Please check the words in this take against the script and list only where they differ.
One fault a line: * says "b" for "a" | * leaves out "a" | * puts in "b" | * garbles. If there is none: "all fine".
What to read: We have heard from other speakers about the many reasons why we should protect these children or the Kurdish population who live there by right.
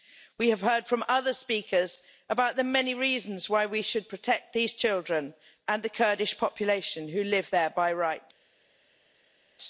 * says "and" for "or"